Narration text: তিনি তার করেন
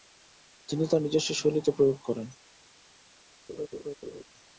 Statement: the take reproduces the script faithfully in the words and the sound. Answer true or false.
false